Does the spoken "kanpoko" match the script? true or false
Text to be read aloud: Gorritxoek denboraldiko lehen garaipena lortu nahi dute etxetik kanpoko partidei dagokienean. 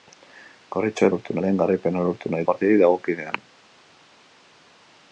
false